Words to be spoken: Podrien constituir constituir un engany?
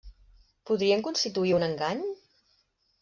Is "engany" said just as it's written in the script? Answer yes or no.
yes